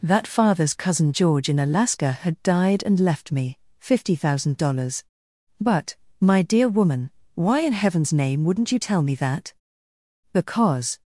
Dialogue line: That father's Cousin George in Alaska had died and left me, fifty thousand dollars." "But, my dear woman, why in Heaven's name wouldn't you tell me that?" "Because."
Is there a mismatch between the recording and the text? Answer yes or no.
no